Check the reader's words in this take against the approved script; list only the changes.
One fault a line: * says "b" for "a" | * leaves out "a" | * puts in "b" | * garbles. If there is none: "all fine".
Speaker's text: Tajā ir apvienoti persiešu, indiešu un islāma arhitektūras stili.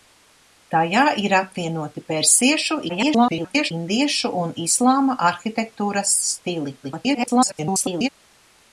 * garbles
* garbles